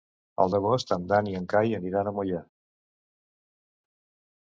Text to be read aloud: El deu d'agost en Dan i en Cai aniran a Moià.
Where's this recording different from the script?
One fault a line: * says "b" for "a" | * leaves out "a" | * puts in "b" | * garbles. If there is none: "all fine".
* leaves out "deu"